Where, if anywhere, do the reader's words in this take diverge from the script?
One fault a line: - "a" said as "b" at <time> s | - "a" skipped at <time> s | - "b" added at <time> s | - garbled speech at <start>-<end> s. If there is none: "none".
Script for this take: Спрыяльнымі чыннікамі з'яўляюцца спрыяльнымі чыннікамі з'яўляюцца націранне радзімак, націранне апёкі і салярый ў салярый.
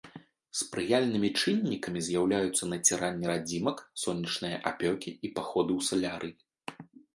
- "спрыяльнымі чыннікамі з'яўляюцца" skipped at 2.6 s
- "націранне" said as "сонечныя" at 4.0 s
- "салярый" said as "паходы" at 5.4 s